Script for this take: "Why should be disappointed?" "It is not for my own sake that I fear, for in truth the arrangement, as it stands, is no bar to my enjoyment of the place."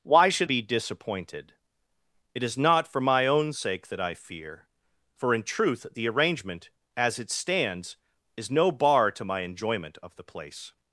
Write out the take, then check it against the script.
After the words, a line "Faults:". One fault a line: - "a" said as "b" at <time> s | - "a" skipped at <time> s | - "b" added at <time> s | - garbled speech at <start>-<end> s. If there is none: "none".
"Why should be disappointed?" "It is not for my own sake that I fear, for in truth the arrangement, as it stands, is no bar to my enjoyment of the place."
Faults:
none